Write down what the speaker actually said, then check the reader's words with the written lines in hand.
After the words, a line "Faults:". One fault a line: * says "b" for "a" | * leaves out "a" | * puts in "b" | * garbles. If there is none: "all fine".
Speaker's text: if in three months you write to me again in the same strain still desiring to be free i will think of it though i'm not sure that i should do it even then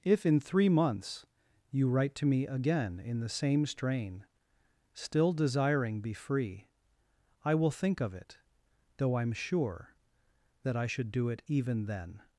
if in three months you write to me again in the same strain still desiring be free i will think of it though i'm sure that i should do it even then
Faults:
* leaves out "to"
* leaves out "not"